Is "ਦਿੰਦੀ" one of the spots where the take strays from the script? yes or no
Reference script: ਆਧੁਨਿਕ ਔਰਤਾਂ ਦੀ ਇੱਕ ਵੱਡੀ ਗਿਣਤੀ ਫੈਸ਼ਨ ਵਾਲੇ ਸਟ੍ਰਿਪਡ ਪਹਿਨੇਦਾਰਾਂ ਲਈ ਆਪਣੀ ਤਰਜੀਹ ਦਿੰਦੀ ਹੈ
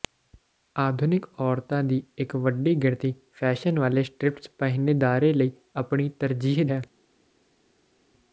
yes